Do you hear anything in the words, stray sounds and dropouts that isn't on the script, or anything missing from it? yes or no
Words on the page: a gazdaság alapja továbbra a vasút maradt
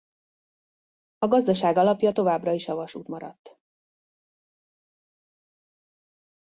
yes